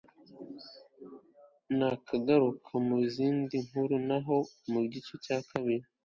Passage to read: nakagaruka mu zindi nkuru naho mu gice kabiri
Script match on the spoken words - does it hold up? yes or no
no